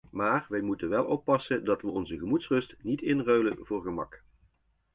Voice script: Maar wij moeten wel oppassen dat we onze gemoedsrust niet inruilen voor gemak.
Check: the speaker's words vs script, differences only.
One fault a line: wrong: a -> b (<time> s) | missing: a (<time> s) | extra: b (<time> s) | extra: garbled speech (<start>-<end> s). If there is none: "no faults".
no faults